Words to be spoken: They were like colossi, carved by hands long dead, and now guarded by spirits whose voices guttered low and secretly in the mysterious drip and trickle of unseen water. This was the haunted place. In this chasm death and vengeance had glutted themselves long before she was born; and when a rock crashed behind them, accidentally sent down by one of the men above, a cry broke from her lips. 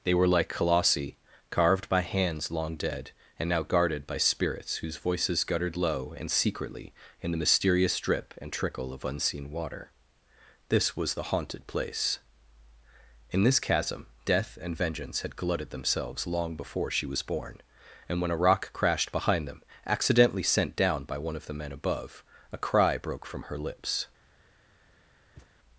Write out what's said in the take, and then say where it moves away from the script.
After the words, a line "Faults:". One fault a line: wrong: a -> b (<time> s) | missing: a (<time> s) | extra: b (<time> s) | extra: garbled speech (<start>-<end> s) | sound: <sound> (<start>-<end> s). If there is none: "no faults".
They were like colossi, carved by hands long dead, and now guarded by spirits whose voices guttered low and secretly in the mysterious drip and trickle of unseen water. This was the haunted place. In this chasm death and vengeance had glutted themselves long before she was born; and when a rock crashed behind them, accidentally sent down by one of the men above, a cry broke from her lips.
Faults:
sound: thud (25.4-25.5 s)